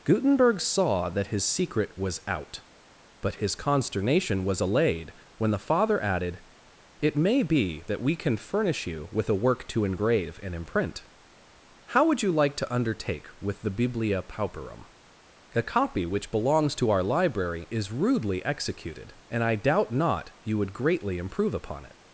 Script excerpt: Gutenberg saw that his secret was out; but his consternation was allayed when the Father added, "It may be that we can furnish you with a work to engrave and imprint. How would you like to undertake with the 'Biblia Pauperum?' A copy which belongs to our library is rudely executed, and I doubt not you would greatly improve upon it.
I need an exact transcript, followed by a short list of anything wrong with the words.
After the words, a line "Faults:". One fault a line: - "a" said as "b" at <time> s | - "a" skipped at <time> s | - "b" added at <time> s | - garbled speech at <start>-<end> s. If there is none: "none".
Gutenberg saw that his secret was out; but his consternation was allayed when the Father added, "It may be that we can furnish you with a work to engrave and imprint. How would you like to undertake with the 'Biblia Pauperum?' A copy which belongs to our library is rudely executed, and I doubt not you would greatly improve upon it.
Faults:
none